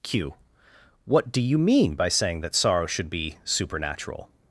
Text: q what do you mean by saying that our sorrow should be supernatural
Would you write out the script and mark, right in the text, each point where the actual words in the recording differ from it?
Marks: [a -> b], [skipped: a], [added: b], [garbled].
q what do you mean by saying that [skipped: our] sorrow should be supernatural